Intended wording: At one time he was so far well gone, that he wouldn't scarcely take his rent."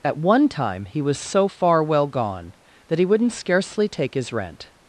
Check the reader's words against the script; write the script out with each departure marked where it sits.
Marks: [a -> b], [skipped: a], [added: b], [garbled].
At one time he was so far well gone, that he wouldn't scarcely take his rent."